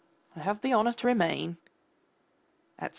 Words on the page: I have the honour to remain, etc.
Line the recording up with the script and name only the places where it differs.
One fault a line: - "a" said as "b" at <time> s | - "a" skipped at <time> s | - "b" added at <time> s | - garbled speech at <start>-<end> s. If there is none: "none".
none